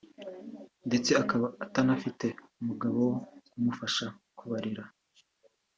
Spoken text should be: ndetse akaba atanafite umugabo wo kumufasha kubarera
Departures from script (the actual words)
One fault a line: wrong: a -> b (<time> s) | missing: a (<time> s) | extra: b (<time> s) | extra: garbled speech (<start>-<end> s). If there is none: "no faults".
no faults